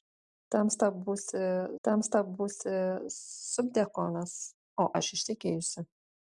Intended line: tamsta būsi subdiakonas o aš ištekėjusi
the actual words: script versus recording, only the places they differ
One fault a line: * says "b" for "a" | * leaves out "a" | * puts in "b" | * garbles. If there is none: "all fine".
* puts in "tamsta būsi"